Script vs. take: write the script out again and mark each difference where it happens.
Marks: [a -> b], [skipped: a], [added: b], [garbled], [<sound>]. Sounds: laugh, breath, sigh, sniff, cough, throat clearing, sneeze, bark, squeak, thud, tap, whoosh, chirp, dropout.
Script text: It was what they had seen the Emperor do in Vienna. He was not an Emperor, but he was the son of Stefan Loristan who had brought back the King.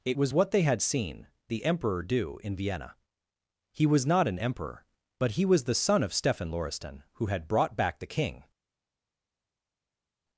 It was what they had seen the Emperor do in Vienna. He was not an Emperor, but he was the son of Stefan Loristan who had brought back the King.